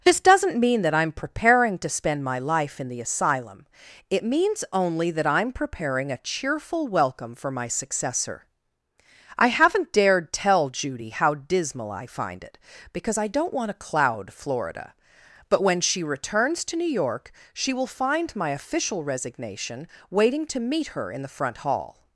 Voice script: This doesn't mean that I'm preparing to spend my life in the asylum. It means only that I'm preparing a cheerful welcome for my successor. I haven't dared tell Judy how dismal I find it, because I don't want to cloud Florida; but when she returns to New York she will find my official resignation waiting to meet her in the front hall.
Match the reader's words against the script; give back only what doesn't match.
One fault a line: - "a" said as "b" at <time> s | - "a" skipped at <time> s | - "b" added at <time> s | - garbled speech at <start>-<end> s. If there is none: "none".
none